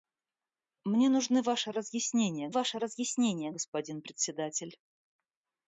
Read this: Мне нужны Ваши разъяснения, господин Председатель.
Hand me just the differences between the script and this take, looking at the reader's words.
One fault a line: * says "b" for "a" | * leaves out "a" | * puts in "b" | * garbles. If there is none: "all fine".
* puts in "Ваши разъяснения"